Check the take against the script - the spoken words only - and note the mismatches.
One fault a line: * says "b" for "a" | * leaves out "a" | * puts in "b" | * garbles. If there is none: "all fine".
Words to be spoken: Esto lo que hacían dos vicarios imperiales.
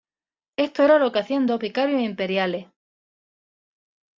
* puts in "era"